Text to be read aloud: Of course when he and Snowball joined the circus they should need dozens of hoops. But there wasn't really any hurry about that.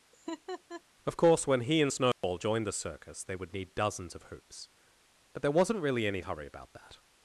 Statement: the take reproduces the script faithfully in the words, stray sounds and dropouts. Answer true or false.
false